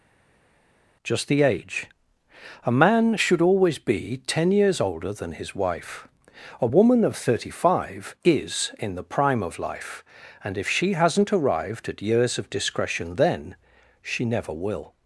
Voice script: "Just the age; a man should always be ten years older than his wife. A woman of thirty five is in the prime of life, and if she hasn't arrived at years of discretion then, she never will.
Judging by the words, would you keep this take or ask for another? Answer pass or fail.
pass